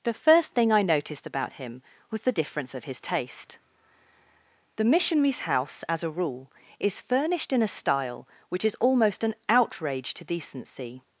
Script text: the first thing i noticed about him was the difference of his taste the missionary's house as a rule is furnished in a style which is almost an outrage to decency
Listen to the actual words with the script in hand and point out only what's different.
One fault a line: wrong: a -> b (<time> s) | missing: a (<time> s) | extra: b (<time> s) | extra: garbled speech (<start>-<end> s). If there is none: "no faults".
no faults